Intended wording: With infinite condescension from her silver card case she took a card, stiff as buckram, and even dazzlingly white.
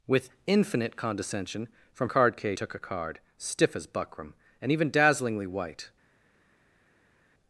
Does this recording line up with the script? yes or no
no